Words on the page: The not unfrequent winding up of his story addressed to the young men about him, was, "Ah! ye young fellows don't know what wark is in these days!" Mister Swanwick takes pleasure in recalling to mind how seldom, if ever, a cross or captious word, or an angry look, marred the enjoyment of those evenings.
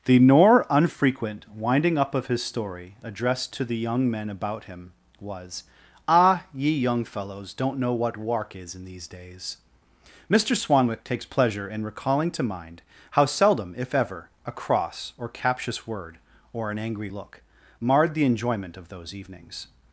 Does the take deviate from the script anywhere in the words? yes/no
yes